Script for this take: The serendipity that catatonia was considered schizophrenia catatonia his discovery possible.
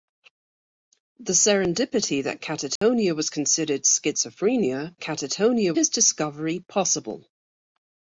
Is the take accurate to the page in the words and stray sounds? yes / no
no